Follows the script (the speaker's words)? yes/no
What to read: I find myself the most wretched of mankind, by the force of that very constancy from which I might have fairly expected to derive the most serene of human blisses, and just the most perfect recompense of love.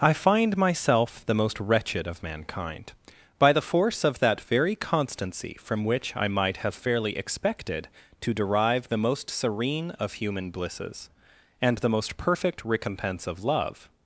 no